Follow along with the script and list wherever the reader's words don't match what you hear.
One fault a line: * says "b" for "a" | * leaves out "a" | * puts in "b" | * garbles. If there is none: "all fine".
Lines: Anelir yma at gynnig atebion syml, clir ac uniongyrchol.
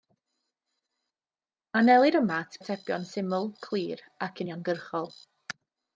* leaves out "gynnig"